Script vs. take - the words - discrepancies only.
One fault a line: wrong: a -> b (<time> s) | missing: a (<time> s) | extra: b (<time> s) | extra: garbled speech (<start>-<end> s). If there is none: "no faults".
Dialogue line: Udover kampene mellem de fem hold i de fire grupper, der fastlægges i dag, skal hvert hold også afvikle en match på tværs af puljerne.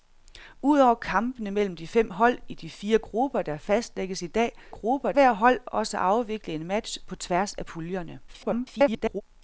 wrong: skal -> grupper (4.7 s)
extra: garbled speech (8.3-9.2 s)